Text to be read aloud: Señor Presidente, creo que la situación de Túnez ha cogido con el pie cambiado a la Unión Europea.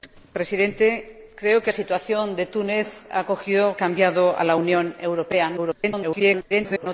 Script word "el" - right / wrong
wrong